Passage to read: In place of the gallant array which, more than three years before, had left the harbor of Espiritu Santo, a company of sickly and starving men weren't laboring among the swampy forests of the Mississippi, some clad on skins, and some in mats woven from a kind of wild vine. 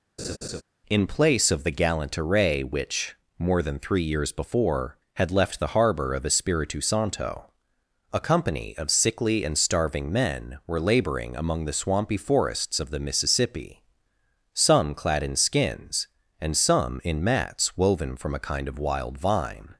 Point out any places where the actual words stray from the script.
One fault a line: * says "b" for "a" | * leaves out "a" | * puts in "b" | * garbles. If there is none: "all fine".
* says "were" for "weren't"
* says "in" for "on"